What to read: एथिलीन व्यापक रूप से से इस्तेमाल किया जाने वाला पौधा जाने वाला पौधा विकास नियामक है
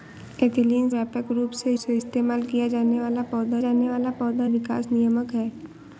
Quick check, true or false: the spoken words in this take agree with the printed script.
true